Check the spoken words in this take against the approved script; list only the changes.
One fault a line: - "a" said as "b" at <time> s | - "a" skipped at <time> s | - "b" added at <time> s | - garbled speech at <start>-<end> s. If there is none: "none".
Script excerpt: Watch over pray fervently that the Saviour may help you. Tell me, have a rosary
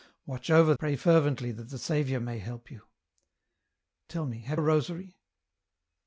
none